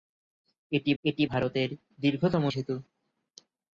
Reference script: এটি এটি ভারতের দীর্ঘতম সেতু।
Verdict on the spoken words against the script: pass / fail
pass